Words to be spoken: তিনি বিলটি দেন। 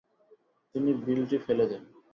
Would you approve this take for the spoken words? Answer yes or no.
no